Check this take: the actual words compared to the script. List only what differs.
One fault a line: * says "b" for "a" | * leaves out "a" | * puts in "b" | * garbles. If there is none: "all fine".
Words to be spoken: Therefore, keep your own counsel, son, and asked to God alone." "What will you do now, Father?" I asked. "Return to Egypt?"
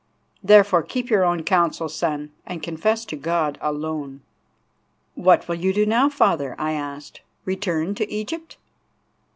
* says "confess" for "asked"